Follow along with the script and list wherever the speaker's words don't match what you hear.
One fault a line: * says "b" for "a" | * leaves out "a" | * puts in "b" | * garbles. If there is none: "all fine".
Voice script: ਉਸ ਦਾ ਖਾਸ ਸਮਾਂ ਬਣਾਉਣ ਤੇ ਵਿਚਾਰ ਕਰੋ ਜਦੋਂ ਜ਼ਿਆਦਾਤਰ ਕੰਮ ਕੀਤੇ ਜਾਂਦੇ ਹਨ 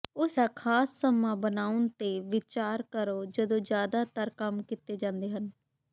all fine